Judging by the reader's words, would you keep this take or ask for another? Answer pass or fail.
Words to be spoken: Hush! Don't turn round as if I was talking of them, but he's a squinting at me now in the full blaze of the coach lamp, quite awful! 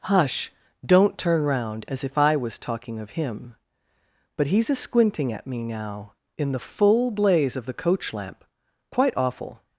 fail